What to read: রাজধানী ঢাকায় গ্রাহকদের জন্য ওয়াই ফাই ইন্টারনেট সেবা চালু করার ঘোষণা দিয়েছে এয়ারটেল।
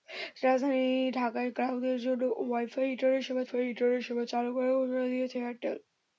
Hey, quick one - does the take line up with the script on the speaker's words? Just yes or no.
no